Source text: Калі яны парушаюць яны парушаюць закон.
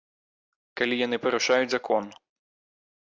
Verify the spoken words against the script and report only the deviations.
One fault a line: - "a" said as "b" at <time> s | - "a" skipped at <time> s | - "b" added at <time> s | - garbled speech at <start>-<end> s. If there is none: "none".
- "яны парушаюць" skipped at 1.7 s